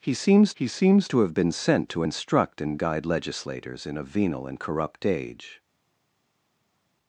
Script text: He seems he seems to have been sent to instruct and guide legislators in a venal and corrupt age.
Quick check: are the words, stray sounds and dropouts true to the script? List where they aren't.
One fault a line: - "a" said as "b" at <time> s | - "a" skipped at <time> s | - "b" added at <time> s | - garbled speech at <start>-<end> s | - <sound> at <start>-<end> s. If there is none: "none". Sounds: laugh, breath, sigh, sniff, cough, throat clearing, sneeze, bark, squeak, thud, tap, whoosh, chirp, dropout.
none